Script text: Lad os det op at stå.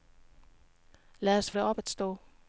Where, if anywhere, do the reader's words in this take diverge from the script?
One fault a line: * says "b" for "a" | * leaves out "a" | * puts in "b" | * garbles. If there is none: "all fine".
all fine